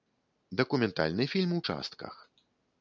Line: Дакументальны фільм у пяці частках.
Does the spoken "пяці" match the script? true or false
false